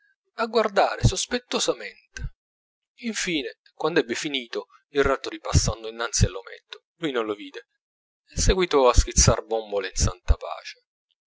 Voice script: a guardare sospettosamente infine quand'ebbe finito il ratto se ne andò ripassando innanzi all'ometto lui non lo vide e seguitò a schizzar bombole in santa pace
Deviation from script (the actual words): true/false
true